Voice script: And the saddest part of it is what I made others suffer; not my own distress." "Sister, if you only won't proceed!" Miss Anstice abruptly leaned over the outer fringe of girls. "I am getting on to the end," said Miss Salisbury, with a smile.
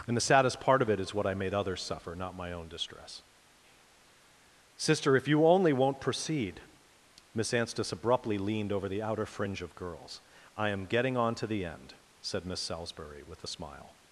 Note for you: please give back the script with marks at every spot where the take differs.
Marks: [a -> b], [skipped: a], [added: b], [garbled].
And the saddest part of it is what I made others suffer; not my own distress." "Sister, if you only won't proceed!" Miss Anstice abruptly leaned over the outer fringe of girls. "I am getting on to the end," said Miss Salisbury, with a smile.